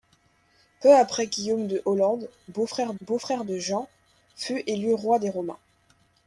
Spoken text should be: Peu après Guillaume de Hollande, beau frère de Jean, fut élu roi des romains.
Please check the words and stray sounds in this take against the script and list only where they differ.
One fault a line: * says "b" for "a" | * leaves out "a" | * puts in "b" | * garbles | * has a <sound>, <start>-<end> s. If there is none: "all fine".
* puts in "beau frère"